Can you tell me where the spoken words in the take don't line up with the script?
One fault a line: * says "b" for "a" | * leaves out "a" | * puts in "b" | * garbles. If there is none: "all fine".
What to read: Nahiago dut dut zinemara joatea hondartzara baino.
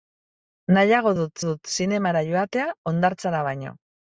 all fine